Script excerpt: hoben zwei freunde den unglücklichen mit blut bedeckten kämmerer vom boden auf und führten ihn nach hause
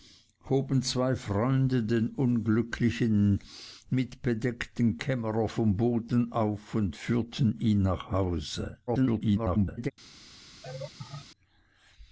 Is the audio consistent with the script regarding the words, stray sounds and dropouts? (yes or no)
no